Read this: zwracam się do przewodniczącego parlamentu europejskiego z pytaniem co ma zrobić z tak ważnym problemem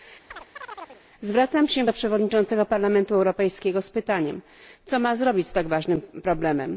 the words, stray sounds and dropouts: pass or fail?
fail